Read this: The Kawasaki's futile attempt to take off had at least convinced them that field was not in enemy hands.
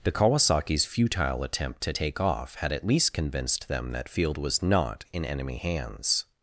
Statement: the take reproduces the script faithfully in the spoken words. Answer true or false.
true